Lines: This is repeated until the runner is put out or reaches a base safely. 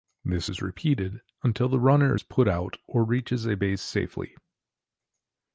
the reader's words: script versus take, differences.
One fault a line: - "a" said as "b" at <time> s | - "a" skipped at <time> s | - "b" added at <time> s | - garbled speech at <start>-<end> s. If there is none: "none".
none